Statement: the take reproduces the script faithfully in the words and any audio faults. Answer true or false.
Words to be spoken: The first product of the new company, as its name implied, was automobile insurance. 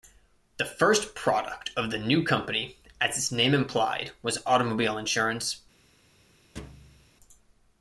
false